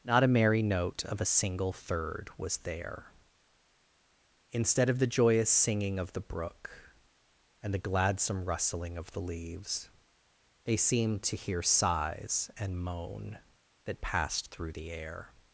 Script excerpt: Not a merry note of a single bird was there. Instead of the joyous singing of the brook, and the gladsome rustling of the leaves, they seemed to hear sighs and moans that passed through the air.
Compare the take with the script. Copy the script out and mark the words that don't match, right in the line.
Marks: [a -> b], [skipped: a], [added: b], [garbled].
Not a merry note of a single [bird -> third] was there. Instead of the joyous singing of the brook, and the gladsome rustling of the leaves, they seemed to hear sighs and [moans -> moan] that passed through the air.